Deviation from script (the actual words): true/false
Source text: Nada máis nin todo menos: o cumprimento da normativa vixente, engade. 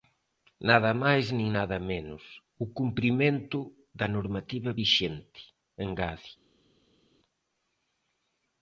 true